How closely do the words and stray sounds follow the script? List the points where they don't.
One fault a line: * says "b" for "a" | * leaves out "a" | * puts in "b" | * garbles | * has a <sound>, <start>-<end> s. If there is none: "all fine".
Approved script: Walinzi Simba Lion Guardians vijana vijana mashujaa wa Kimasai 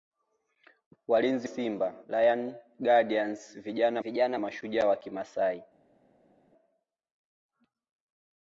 all fine